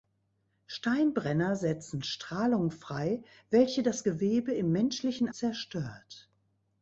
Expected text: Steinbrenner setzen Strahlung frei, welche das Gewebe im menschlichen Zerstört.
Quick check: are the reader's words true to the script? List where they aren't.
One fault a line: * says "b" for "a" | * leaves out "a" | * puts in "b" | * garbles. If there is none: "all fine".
all fine